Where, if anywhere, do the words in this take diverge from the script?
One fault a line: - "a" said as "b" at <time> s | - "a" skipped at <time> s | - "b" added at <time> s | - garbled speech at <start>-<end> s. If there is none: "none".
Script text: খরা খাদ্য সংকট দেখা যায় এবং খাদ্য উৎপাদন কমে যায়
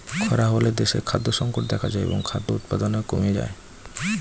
- "হলে দেশে" added at 0.5 s